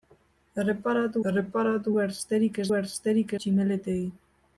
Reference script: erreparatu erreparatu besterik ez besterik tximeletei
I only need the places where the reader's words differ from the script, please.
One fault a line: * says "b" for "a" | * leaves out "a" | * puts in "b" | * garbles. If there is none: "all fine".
all fine